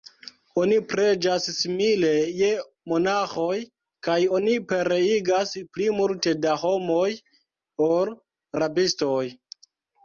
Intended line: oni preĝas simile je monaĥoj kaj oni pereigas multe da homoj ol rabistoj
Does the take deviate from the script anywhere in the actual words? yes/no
yes